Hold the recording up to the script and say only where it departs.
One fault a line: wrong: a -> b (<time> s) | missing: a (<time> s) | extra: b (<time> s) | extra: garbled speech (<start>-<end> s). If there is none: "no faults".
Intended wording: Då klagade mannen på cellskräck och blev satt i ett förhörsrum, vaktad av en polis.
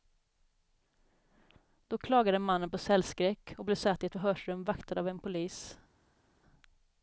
no faults